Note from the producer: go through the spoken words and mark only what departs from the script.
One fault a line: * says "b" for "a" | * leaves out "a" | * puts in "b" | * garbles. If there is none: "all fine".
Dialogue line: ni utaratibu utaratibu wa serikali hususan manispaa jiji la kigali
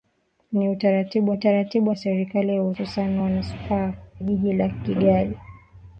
all fine